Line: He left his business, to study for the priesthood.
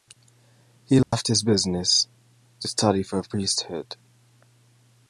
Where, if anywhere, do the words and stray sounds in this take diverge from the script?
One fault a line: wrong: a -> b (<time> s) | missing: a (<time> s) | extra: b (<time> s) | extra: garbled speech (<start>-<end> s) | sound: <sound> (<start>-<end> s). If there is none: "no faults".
sound: dropout (1.0-1.1 s)